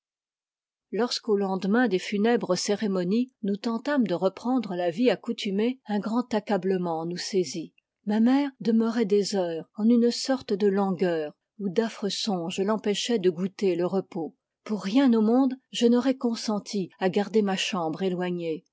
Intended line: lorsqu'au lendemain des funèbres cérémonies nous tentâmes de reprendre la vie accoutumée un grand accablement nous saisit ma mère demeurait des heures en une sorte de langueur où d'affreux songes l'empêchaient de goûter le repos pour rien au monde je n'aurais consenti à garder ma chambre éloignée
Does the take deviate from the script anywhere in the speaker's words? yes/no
no